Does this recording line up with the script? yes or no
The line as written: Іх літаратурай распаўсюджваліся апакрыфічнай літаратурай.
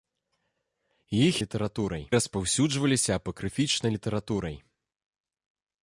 yes